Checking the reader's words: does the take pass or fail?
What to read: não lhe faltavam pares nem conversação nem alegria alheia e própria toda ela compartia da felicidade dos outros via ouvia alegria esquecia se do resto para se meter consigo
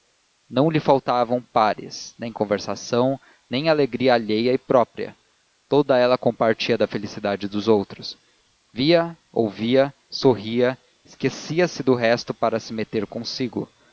fail